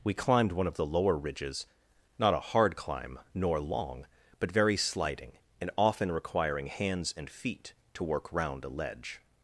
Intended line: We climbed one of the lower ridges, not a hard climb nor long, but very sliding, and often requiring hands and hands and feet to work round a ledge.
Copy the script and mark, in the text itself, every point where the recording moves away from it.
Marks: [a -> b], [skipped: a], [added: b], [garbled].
We climbed one of the lower ridges, not a hard climb nor long, but very sliding, and often requiring hands and [skipped: hands and] feet to work round a ledge.